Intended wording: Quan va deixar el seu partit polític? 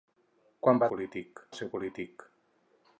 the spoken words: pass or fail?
fail